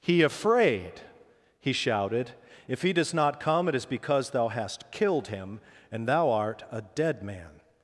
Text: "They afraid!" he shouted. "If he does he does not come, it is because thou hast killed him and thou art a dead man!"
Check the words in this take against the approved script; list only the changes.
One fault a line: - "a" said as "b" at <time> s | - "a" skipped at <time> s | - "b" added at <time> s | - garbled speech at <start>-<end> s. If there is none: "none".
- "They" said as "He" at 0.0 s
- "he does" skipped at 3.1 s